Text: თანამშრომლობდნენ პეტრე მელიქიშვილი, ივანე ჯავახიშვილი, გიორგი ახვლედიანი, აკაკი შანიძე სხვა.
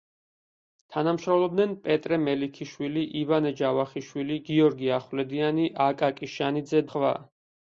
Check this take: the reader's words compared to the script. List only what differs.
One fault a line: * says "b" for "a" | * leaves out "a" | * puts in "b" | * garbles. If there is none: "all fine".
all fine